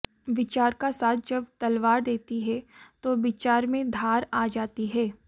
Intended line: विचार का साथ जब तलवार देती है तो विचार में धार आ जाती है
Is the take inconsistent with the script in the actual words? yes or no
no